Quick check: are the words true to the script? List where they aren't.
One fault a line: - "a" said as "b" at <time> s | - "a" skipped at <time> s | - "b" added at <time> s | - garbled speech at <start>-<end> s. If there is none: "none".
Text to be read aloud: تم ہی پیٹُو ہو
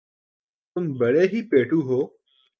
- "بڑے" added at 1.0 s